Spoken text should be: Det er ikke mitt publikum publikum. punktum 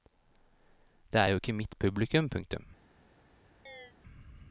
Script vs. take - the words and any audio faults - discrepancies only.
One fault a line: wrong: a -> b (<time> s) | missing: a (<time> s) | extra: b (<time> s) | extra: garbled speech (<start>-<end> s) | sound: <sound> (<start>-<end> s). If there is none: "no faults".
extra: jo (1.3 s)
missing: publikum (2.3 s)
sound: chirp (3.7-3.9 s)